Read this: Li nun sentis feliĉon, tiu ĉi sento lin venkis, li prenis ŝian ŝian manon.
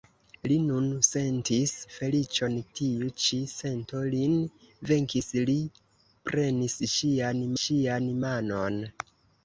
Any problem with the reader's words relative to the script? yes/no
no